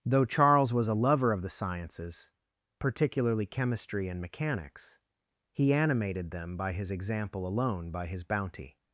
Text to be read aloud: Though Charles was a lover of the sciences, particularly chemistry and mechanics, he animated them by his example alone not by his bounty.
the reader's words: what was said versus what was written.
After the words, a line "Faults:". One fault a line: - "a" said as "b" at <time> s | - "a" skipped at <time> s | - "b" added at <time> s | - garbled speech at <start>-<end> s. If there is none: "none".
Though Charles was a lover of the sciences, particularly chemistry and mechanics, he animated them by his example alone by his bounty.
Faults:
- "not" skipped at 7.9 s